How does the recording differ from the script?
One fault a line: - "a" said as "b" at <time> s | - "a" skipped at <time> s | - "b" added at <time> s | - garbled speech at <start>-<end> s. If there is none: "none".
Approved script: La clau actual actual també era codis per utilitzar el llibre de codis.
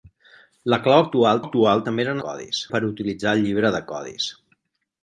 none